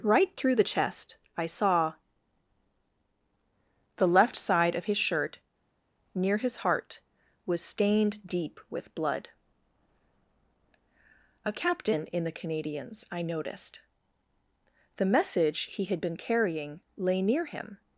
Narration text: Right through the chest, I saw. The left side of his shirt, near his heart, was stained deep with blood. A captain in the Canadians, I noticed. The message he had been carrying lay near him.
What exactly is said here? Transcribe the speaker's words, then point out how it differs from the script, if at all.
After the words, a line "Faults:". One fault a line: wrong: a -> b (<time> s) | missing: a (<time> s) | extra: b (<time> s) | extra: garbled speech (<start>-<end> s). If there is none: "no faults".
Right through the chest, I saw. The left side of his shirt, near his heart, was stained deep with blood. A captain in the Canadians, I noticed. The message he had been carrying lay near him.
Faults:
no faults